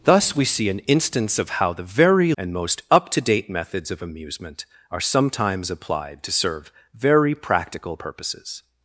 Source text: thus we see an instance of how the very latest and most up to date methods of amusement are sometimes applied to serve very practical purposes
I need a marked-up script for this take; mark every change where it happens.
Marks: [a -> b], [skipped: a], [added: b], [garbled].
thus we see an instance of how the very [skipped: latest] and most up to date methods of amusement are sometimes applied to serve very practical purposes